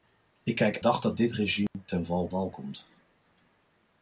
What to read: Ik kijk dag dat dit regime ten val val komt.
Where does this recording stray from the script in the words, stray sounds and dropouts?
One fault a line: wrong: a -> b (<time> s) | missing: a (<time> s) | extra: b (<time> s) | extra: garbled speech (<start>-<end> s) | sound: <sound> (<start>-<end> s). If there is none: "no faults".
sound: dropout (1.7-1.7 s)